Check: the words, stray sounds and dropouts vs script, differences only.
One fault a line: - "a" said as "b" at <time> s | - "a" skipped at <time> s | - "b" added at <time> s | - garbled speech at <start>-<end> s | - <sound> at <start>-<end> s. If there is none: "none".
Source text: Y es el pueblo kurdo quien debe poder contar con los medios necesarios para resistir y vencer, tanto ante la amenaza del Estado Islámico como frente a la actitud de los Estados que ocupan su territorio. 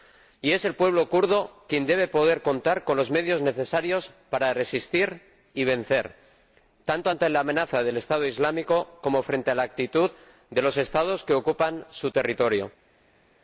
none